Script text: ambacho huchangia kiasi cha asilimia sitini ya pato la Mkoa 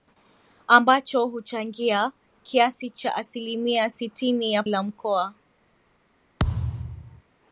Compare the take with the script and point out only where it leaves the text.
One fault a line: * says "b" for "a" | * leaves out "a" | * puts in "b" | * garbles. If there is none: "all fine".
* leaves out "pato"